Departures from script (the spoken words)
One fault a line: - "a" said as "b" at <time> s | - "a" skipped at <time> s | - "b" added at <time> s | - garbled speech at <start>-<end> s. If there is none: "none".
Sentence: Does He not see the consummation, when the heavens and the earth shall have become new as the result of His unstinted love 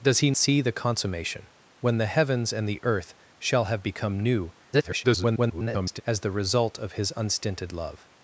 - "not" skipped at 0.3 s
- garbled speech at 4.7-6.0 s